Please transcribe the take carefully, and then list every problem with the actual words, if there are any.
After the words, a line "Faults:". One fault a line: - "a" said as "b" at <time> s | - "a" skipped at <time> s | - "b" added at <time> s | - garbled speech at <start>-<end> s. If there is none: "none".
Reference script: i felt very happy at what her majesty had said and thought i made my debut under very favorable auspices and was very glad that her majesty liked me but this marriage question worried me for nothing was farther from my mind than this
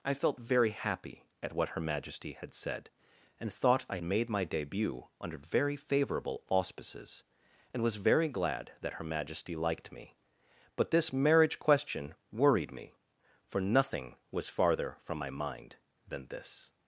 i felt very happy at what her majesty had said and thought i made my debut under very favorable auspices and was very glad that her majesty liked me but this marriage question worried me for nothing was farther from my mind than this
Faults:
none